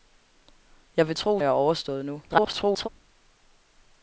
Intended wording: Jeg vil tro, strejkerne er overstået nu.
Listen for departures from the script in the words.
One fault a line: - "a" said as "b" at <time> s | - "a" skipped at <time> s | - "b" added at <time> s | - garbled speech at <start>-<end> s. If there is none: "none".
- "strejkerne" skipped at 1.4 s
- garbled speech at 2.3-2.9 s